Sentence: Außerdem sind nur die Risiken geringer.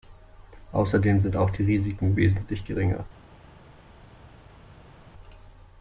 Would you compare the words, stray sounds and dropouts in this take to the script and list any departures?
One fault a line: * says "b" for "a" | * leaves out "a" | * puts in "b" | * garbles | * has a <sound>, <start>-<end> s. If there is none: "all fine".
* says "auch" for "nur"
* puts in "wesentlich"